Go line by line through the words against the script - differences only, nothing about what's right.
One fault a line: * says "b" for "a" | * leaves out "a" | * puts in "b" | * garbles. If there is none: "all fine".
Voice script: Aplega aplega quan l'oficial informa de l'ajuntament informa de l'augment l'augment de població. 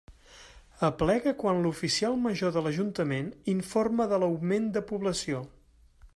* leaves out "aplega"
* says "major" for "informa"
* leaves out "l'augment"